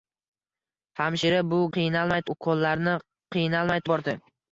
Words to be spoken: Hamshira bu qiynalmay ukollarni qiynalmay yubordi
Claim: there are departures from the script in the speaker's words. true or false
false